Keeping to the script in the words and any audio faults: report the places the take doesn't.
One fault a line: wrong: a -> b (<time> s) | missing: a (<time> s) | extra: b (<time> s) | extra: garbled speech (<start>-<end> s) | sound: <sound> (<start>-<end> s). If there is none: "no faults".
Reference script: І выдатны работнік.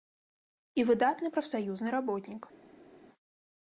extra: прафсаюзны (1.3 s)